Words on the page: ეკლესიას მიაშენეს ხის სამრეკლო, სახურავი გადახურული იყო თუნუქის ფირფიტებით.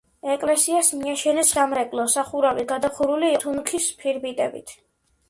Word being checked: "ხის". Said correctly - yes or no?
no